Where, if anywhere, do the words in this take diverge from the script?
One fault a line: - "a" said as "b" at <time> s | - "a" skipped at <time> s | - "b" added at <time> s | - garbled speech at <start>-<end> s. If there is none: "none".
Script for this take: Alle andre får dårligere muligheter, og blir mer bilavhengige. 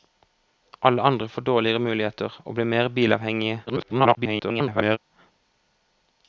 - garbled speech at 3.7-5.0 s